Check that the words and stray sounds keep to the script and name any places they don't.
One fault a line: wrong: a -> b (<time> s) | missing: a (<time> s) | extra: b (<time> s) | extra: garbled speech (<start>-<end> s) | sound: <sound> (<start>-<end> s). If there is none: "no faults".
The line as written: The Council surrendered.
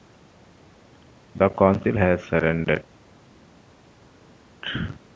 extra: has (2.0 s)